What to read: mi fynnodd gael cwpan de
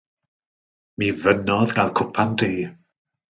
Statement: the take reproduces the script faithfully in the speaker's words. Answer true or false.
true